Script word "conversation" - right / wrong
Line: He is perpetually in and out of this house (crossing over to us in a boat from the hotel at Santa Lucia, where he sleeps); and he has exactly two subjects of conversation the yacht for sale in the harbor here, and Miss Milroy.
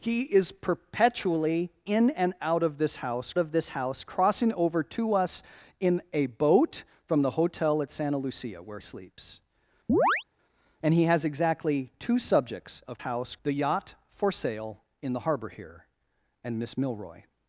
wrong